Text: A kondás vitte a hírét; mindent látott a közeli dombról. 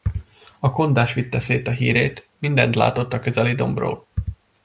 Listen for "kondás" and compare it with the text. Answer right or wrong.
right